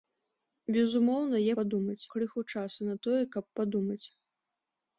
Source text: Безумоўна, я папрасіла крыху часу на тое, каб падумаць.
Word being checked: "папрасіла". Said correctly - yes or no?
no